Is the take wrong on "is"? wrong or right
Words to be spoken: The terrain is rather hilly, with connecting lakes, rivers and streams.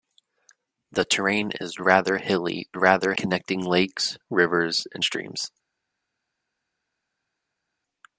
right